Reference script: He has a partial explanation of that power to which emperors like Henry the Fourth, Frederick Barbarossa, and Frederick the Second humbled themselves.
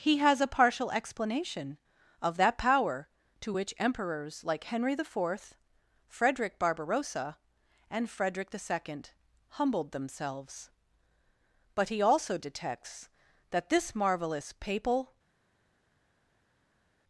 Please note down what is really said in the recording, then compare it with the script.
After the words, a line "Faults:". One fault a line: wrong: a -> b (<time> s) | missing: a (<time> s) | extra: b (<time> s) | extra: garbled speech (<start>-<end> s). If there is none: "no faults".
He has a partial explanation of that power to which emperors like Henry the Fourth, Frederick Barbarossa, and Frederick the Second humbled themselves. But he also detects that this marvelous papal
Faults:
extra: But he also detects that this marvelous papal (11.7 s)